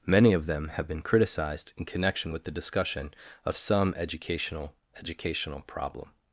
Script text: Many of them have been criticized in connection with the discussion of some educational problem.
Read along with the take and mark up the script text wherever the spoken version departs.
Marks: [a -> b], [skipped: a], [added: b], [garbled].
Many of them have been criticized in connection with the discussion of some educational [added: educational] problem.